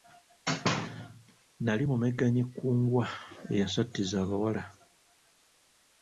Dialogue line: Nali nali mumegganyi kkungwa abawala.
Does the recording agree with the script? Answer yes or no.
no